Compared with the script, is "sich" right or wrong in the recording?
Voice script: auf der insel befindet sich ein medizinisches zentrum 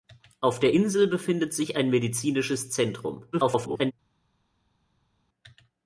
right